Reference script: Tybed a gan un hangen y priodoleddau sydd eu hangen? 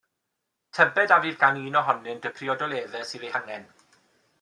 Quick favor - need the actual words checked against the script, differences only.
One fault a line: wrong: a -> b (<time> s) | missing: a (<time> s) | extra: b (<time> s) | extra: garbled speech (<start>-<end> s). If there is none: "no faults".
extra: fydd (1.2 s)
wrong: hangen -> ohonynt (1.8 s)